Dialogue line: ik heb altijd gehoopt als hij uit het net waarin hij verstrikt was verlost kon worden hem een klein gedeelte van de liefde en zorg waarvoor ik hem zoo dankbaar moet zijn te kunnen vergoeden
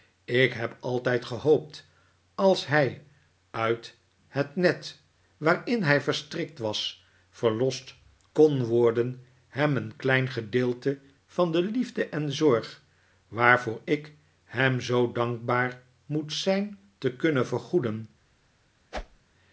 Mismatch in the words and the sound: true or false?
true